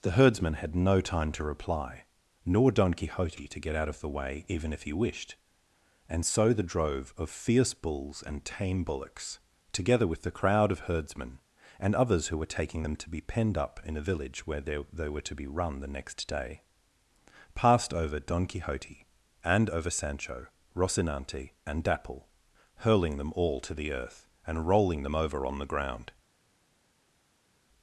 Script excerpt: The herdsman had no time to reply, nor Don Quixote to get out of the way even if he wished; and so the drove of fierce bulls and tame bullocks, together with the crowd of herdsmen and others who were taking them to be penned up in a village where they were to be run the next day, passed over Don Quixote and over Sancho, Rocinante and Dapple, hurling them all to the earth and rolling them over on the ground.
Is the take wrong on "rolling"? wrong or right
right